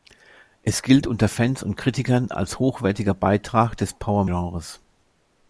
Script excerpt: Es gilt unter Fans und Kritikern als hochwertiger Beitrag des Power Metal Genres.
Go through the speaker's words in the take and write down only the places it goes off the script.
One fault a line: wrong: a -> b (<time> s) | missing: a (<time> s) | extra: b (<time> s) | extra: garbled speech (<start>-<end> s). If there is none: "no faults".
missing: Metal (4.2 s)